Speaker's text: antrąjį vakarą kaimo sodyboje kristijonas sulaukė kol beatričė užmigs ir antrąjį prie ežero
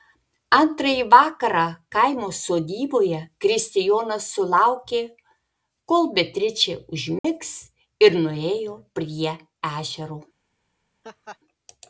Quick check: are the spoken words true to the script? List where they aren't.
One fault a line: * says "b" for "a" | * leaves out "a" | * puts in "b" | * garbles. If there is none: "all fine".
* says "nuėjo" for "antrąjį"